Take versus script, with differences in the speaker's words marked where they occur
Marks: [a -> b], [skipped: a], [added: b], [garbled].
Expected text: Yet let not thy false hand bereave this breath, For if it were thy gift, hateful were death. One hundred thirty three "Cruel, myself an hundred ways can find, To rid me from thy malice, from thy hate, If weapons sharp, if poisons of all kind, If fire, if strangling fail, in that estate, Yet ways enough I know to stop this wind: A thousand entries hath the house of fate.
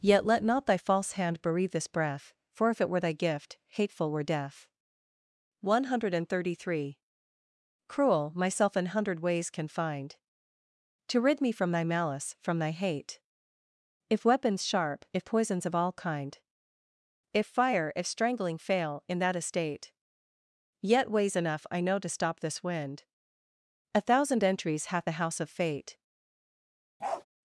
Yet let not thy false hand bereave this breath, For if it were thy gift, hateful were death. One hundred thirty three "Cruel, myself an hundred ways can find, To rid me from thy malice, from thy hate, If weapons sharp, if poisons of all kind, If fire, if strangling fail, in that estate, Yet ways enough I know to stop this wind: A thousand entries hath the house of fate.